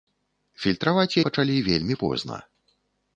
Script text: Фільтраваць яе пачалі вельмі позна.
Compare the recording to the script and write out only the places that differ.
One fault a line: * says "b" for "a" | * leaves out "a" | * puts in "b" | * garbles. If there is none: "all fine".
* leaves out "яе"